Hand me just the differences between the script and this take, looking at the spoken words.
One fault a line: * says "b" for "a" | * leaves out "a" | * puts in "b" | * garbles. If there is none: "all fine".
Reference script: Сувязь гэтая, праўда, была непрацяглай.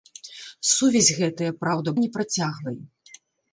* leaves out "была"